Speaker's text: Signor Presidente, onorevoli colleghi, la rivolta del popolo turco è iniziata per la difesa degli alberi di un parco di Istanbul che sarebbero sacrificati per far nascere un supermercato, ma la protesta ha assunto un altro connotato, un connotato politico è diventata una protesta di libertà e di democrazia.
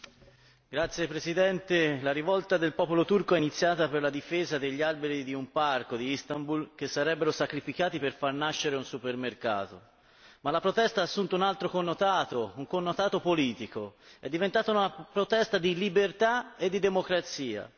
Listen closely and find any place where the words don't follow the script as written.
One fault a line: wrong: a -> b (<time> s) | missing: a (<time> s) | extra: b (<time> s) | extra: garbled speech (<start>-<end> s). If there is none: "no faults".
no faults